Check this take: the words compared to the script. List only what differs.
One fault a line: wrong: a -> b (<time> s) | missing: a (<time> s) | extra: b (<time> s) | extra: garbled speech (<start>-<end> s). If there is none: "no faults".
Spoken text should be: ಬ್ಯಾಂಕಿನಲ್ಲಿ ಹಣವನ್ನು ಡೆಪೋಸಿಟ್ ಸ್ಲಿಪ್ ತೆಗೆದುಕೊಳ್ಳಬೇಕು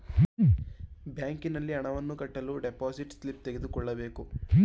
extra: ಕಟ್ಟಲು (2.2 s)